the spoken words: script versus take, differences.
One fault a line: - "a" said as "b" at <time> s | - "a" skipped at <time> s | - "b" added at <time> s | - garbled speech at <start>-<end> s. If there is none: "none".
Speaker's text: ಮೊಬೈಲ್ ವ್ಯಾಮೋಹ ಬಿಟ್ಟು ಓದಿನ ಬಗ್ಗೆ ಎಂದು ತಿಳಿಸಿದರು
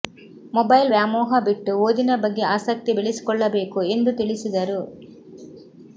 - "ಆಸಕ್ತಿ ಬೆಳೆಸಿಕೊಳ್ಳಬೇಕು" added at 2.5 s